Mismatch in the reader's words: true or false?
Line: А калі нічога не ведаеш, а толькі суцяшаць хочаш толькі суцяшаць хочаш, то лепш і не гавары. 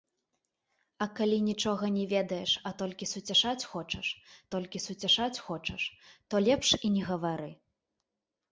false